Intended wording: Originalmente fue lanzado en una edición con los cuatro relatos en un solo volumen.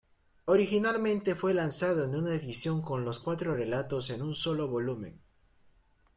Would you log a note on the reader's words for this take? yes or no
no